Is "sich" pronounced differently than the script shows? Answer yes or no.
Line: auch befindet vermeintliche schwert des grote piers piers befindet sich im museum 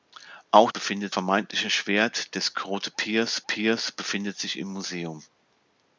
no